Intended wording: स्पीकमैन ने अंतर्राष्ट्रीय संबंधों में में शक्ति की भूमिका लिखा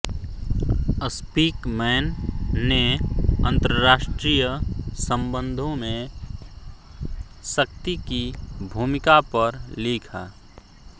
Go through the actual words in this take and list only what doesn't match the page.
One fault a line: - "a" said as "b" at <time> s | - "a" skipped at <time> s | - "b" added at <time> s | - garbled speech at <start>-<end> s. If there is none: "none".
- "में" skipped at 6.1 s
- "पर" added at 9.3 s